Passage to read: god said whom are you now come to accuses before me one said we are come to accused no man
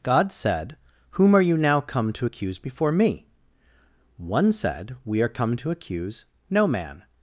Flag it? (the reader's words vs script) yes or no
yes